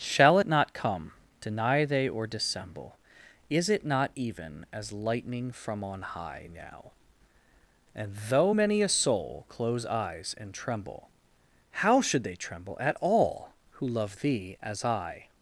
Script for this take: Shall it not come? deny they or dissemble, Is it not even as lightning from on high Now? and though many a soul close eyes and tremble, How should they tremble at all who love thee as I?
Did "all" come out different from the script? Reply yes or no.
no